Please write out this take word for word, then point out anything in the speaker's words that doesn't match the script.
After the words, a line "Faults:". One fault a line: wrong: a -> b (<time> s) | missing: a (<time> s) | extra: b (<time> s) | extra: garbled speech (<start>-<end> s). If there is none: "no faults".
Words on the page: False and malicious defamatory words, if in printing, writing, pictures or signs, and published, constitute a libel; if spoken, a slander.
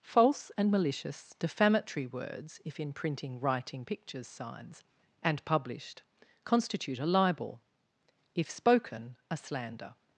False and malicious defamatory words, if in printing, writing, pictures signs, and published, constitute a libel; if spoken, a slander.
Faults:
missing: or (4.3 s)